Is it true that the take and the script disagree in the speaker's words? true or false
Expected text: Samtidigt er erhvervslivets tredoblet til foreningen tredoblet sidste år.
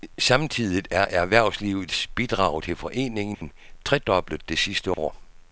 true